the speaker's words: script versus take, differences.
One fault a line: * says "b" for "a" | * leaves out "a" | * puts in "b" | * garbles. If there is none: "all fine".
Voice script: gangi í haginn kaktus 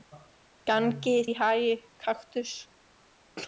all fine